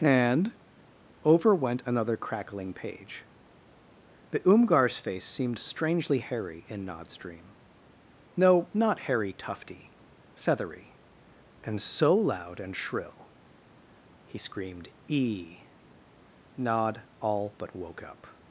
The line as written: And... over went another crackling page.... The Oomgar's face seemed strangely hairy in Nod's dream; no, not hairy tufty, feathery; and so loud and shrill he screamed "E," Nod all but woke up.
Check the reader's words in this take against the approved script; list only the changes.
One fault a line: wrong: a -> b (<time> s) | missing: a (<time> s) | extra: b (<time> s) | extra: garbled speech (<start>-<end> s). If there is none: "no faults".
no faults